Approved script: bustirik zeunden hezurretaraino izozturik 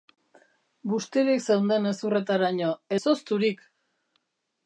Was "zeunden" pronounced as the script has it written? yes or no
yes